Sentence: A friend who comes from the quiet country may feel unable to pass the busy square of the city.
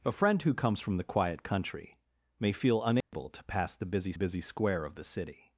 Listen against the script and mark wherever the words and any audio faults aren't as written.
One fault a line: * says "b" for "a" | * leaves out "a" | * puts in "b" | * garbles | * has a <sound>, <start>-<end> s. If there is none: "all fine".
* has a dropout, 3.0-3.1 s
* puts in "busy"